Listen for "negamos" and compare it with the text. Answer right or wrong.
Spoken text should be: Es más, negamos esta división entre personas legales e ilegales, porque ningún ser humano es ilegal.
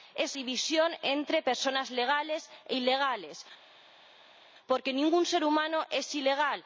wrong